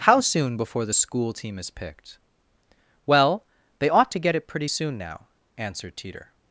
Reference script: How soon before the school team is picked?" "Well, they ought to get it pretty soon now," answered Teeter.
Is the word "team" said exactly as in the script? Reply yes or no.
yes